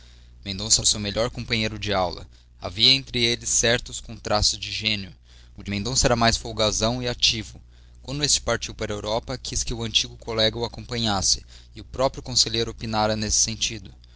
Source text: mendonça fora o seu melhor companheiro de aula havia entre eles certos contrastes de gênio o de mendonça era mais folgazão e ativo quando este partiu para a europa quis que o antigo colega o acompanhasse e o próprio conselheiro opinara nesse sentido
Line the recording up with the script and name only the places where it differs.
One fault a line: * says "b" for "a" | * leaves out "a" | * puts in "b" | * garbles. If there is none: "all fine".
* leaves out "fora"